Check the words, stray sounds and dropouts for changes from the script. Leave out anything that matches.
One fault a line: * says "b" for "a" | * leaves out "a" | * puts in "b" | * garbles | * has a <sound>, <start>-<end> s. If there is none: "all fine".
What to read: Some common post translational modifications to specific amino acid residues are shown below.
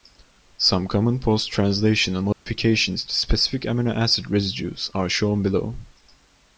* has a dropout, 2.3-2.5 s